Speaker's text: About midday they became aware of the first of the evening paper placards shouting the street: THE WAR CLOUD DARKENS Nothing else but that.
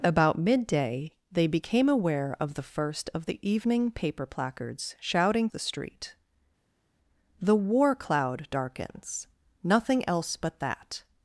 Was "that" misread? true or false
false